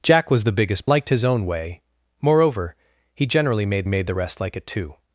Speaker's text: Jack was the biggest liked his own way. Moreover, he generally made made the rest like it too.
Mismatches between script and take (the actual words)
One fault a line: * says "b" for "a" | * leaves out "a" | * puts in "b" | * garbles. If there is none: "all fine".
all fine